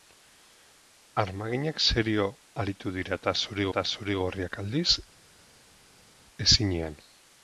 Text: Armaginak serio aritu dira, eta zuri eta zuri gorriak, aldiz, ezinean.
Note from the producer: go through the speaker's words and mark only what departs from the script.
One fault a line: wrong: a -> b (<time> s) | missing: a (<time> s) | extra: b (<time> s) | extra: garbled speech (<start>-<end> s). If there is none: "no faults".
no faults